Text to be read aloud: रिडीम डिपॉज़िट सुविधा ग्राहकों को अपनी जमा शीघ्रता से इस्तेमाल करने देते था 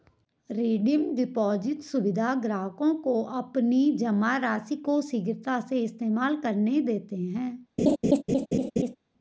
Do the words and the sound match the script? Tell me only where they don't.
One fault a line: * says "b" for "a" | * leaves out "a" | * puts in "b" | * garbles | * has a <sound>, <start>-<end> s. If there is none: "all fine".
* puts in "राशि को"
* says "है" for "था"
* has a laugh, 7.8-9.0 s